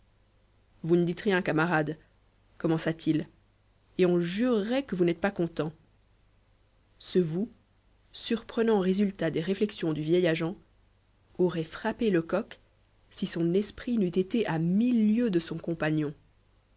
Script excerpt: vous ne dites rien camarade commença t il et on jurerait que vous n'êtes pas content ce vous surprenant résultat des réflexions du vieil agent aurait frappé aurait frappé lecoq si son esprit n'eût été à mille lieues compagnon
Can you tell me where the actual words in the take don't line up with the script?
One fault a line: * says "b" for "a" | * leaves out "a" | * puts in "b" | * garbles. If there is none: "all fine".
* leaves out "aurait frappé"
* puts in "de son"